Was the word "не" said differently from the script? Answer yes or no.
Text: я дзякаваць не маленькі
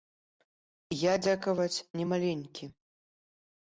no